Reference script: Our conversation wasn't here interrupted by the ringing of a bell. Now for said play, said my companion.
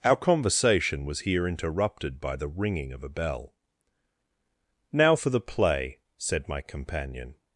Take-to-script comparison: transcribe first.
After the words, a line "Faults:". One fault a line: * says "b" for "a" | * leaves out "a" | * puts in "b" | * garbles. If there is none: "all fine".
Our conversation was here interrupted by the ringing of a bell. Now for the play, said my companion.
Faults:
* says "was" for "wasn't"
* says "the" for "said"